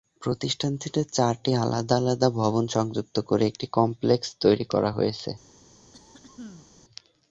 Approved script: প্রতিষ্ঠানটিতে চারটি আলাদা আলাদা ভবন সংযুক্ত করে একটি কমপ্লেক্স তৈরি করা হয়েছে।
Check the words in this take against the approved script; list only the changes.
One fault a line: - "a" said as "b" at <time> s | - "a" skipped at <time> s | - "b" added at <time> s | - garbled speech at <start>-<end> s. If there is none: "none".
none